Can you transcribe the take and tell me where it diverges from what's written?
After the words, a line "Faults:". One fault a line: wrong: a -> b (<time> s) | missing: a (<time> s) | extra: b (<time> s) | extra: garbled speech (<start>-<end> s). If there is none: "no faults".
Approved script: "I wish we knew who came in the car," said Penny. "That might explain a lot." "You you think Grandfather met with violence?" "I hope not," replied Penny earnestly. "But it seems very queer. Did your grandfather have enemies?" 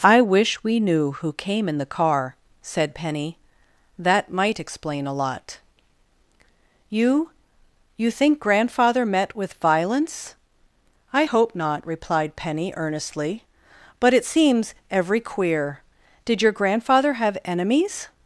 "I wish we knew who came in the car," said Penny. "That might explain a lot." "You you think Grandfather met with violence?" "I hope not," replied Penny earnestly. "But it seems every queer. Did your grandfather have enemies?"
Faults:
wrong: very -> every (14.9 s)